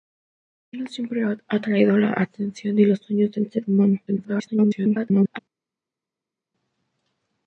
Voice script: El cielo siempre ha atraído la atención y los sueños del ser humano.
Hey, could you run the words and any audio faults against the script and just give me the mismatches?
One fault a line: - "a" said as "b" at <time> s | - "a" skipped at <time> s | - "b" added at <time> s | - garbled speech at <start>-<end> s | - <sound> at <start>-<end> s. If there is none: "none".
- garbled speech at 4.1-5.4 s